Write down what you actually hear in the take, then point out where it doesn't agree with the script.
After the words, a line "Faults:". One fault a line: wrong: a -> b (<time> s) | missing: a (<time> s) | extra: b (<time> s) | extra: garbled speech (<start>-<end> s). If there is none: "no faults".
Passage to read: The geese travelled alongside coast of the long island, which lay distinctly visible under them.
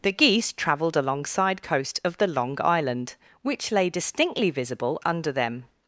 The geese travelled alongside coast of the long island, which lay distinctly visible under them.
Faults:
no faults